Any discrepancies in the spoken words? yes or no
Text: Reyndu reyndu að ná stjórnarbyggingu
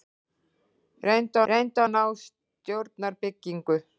no